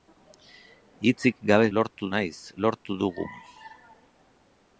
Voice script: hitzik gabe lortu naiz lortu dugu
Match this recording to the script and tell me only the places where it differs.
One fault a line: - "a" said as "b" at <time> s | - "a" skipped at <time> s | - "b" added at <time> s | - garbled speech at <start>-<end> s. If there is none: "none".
none